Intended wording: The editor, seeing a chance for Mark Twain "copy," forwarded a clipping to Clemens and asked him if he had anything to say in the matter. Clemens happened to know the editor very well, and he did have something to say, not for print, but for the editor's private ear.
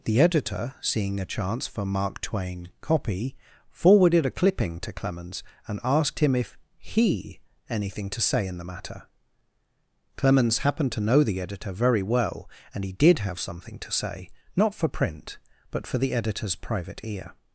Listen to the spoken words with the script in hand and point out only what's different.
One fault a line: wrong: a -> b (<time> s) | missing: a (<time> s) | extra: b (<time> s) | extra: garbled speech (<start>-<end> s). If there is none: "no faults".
missing: had (7.4 s)